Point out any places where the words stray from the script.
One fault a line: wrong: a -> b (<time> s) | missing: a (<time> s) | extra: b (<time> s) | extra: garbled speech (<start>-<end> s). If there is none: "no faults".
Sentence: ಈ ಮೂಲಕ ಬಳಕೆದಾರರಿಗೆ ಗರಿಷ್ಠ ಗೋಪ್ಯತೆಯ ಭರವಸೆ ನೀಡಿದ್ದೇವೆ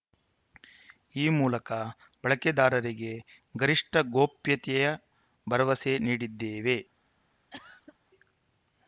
no faults